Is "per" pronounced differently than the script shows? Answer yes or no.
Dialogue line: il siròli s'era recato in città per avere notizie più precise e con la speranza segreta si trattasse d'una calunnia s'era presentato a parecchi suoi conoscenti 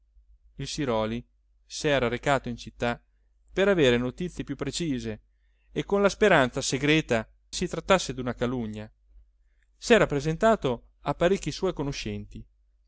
no